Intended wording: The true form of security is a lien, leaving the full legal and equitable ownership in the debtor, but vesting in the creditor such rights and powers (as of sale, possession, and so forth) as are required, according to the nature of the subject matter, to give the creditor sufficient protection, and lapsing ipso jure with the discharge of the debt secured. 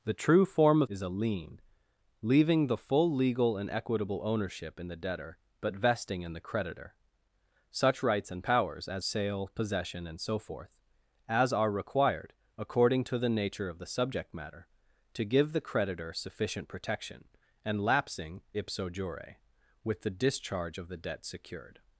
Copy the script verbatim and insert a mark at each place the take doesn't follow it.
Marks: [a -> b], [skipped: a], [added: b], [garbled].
The true form of [skipped: security] is a lien, leaving the full legal and equitable ownership in the debtor, but vesting in the creditor such rights and powers (as [skipped: of] sale, possession, and so forth) as are required, according to the nature of the subject matter, to give the creditor sufficient protection, and lapsing ipso jure with the discharge of the debt secured.